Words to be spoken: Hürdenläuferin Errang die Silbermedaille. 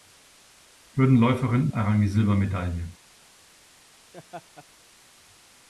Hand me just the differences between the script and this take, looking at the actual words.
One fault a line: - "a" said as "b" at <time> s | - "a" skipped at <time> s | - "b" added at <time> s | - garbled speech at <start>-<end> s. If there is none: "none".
none